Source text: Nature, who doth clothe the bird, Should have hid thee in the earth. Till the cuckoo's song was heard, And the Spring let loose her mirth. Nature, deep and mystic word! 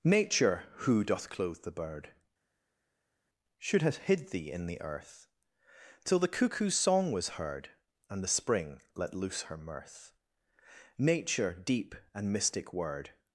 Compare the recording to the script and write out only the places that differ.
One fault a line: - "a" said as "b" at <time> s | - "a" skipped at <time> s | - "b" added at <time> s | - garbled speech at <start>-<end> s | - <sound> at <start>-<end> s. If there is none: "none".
none